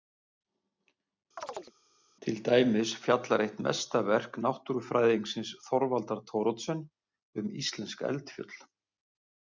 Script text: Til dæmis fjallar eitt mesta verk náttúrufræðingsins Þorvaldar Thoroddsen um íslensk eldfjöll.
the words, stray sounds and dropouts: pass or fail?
fail